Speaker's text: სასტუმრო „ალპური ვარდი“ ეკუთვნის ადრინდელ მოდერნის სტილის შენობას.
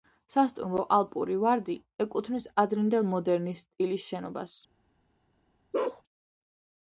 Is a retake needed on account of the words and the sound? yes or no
yes